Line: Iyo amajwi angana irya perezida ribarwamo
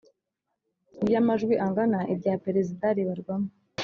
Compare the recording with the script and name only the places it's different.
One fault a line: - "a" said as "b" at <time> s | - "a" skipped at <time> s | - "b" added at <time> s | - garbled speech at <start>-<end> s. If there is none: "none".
none